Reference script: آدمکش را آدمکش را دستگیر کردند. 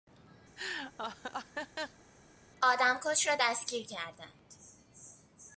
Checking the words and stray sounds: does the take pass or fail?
fail